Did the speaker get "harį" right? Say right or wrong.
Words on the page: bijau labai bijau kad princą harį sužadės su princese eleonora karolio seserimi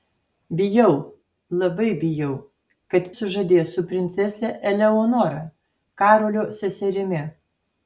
wrong